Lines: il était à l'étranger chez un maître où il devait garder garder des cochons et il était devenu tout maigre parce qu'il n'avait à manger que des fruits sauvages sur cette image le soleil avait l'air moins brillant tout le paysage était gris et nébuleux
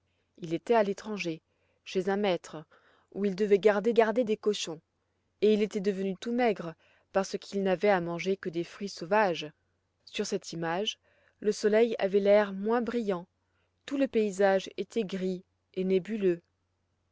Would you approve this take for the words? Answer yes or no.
yes